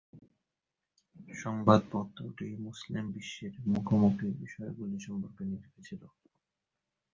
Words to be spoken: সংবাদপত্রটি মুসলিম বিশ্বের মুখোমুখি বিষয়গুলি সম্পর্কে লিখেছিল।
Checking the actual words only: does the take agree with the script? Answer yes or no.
yes